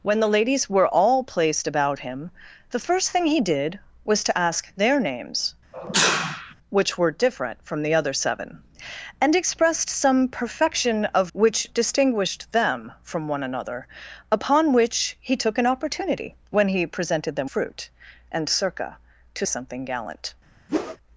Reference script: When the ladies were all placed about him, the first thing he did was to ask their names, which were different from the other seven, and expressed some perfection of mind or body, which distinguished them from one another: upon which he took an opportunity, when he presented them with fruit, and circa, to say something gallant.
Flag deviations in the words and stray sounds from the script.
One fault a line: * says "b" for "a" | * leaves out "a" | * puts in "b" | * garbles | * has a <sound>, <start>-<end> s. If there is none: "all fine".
* has a sneeze, 5.7-6.6 s
* leaves out "mind or body"
* leaves out "with"
* leaves out "say"
* has a whoosh, 20.7-21.0 s